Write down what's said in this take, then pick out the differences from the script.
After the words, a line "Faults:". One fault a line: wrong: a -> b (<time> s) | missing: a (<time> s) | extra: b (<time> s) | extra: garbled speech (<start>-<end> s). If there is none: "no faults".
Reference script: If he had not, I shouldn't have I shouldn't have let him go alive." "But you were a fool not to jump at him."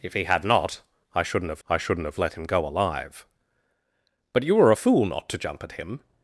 If he had not, I shouldn't have I shouldn't have let him go alive." "But you were a fool not to jump at him."
Faults:
no faults